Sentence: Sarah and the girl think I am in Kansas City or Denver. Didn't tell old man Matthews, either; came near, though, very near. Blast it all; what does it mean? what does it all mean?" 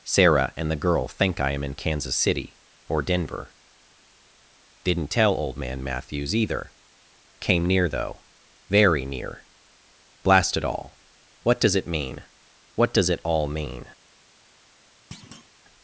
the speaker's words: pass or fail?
pass